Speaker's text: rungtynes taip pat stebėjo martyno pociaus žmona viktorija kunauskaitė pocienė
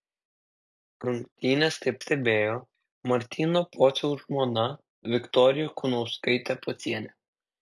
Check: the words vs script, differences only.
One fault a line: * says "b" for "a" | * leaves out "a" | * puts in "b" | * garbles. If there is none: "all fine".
* leaves out "pat"